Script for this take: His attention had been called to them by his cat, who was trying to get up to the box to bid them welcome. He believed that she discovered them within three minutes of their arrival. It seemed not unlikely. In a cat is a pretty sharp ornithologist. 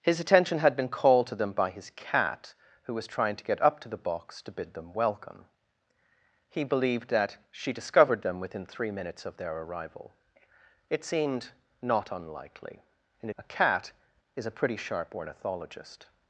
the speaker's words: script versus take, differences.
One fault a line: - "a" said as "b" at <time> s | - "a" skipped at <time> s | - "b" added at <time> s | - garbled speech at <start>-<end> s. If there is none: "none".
none